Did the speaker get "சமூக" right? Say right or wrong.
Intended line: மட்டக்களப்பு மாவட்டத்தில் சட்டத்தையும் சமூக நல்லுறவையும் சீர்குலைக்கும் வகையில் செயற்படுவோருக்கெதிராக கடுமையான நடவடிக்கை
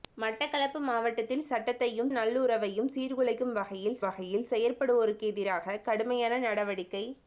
wrong